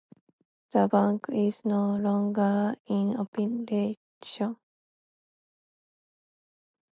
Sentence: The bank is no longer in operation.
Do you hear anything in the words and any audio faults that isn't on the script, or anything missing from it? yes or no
no